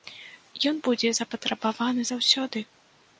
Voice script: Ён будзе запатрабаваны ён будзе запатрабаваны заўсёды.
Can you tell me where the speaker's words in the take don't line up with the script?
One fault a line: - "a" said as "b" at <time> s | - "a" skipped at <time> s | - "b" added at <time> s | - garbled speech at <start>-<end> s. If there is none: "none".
- "ён будзе запатрабаваны" skipped at 2.0 s